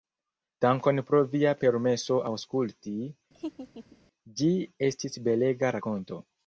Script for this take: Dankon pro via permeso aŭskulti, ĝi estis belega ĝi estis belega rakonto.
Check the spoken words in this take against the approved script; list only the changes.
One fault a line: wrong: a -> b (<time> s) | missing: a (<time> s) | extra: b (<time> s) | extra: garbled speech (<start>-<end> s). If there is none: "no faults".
missing: ĝi estis belega (5.8 s)